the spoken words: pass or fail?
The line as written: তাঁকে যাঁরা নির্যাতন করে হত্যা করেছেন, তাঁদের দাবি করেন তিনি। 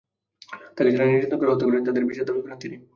fail